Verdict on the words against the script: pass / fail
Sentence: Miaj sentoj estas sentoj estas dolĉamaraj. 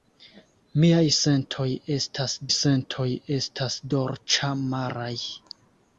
pass